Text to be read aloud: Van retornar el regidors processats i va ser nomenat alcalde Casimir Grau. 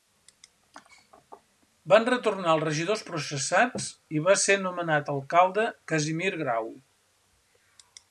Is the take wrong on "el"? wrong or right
wrong